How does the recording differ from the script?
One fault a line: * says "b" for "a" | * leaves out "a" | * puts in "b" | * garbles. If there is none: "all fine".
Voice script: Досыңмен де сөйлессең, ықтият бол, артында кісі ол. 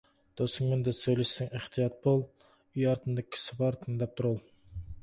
* puts in "үй"
* puts in "бар тыңдап тұр"